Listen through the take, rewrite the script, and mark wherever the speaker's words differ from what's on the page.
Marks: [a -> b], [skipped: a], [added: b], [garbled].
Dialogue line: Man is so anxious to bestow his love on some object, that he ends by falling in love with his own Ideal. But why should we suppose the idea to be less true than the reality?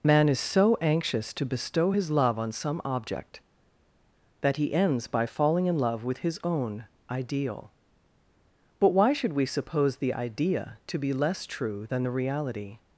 Man is so anxious to bestow his love on some object, that he ends by falling in love with his own Ideal. But why should we suppose the idea to be less true than the reality?